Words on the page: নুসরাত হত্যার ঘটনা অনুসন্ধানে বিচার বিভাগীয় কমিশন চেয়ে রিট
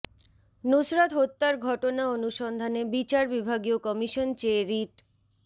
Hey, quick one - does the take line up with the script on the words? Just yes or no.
yes